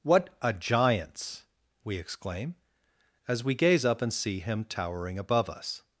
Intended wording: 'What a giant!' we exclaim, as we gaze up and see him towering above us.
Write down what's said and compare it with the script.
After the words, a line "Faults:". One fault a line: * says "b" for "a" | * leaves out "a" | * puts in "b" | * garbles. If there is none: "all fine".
'What a giants!' we exclaim, as we gaze up and see him towering above us.
Faults:
* says "giants" for "giant"